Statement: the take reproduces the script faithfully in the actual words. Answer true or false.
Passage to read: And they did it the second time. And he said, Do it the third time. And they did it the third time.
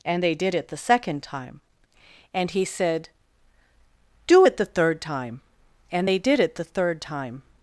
true